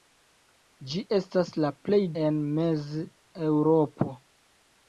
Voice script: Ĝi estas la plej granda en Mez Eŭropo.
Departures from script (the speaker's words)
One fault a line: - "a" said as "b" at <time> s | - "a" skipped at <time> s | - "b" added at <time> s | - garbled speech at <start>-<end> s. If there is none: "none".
- "granda" skipped at 2.0 s